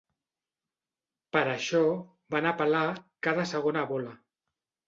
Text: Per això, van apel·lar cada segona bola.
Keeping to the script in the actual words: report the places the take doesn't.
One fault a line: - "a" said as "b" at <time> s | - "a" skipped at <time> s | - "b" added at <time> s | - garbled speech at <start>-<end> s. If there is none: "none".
none